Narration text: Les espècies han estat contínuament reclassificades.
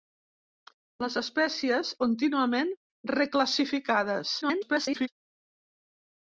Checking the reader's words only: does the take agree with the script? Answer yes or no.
no